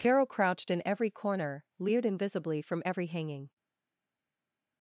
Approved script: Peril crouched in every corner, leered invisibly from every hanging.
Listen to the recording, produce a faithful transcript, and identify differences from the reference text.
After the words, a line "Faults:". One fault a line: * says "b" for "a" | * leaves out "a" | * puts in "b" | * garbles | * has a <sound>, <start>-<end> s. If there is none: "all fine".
Carol crouched in every corner, leered invisibly from every hanging.
Faults:
* says "Carol" for "Peril"